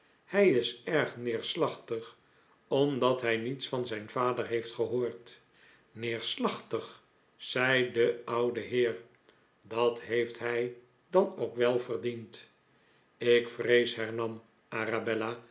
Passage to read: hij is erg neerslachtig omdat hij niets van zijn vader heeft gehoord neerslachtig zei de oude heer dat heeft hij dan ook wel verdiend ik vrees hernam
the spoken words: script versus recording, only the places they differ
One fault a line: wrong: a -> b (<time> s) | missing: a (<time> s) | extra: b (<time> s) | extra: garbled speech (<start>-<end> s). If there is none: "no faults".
no faults